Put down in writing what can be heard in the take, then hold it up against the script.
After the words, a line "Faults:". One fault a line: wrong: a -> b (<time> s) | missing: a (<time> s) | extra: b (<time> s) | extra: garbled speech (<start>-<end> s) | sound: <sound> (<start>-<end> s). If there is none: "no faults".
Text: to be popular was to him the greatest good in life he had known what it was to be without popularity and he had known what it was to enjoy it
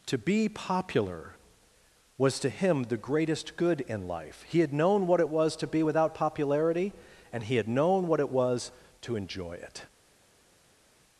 to be popular was to him the greatest good in life he had known what it was to be without popularity and he had known what it was to enjoy it
Faults:
no faults